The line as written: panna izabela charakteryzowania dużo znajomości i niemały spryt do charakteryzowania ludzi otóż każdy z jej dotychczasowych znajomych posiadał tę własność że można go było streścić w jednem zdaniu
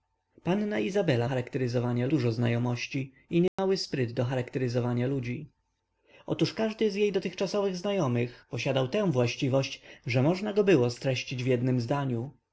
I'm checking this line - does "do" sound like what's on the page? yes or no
yes